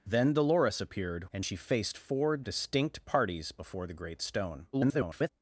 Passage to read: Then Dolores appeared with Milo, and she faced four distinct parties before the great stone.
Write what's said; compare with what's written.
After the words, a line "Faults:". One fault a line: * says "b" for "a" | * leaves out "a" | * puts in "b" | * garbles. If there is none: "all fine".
Then Dolores appeared and she faced four distinct parties before the great stone. [garbled]
Faults:
* leaves out "with Milo"
* garbles